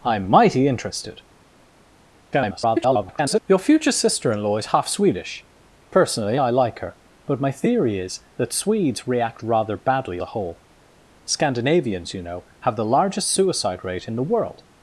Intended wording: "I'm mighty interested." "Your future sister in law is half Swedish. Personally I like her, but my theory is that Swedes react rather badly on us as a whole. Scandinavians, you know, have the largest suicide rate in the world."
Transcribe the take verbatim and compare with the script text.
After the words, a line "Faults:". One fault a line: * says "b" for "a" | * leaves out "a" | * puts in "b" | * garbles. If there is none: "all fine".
"I'm mighty interested." [garbled] "Your future sister in law is half Swedish. Personally I like her, but my theory is that Swedes react rather badly a whole. Scandinavians, you know, have the largest suicide rate in the world."
Faults:
* garbles
* leaves out "on us as"